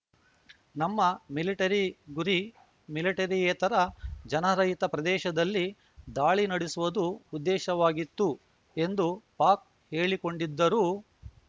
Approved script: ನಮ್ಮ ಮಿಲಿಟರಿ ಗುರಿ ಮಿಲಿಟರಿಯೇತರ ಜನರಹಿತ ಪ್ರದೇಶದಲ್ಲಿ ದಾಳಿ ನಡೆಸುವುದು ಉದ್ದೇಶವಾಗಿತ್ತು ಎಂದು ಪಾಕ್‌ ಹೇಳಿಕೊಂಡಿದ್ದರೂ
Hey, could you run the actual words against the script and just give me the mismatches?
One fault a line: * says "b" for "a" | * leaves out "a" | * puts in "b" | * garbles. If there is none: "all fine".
all fine